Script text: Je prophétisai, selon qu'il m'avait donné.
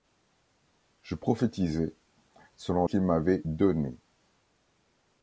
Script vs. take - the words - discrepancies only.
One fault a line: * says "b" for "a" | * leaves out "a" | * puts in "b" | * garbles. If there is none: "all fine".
all fine